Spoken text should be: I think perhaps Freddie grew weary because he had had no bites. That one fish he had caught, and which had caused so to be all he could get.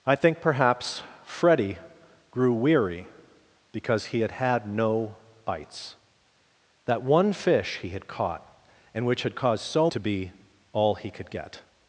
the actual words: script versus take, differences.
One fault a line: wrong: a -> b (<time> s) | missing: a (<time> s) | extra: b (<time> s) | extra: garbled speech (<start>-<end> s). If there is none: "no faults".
no faults